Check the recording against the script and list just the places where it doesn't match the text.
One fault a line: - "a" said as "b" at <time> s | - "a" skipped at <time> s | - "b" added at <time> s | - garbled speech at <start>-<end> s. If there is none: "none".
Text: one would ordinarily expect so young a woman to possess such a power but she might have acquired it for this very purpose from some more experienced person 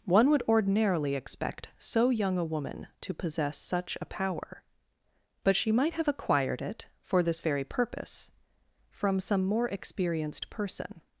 none